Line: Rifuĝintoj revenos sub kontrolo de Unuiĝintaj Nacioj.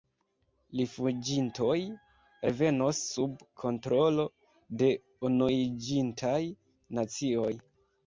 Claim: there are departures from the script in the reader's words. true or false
false